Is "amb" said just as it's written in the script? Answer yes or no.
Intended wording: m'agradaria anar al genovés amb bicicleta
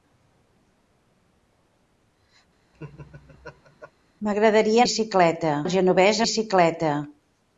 no